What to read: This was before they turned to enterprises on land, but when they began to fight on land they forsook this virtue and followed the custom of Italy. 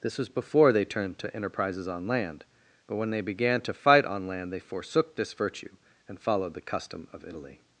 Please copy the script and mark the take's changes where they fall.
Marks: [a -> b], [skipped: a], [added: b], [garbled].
This was before they turned to enterprises on land, but when they began to fight on land they forsook this virtue and followed the custom of Italy.